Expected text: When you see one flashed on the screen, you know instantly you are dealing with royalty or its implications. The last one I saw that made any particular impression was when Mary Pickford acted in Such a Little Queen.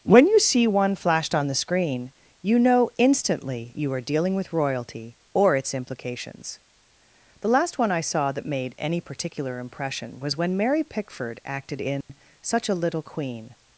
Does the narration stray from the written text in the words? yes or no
no